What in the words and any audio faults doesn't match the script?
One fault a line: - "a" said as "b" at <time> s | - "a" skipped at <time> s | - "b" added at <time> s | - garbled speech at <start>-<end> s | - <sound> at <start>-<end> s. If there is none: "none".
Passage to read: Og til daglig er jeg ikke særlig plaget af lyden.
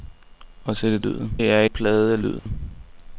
- "daglig" said as "lyden" at 1.0 s
- "ikke særlig" skipped at 1.6 s
- dropout at 2.4-2.5 s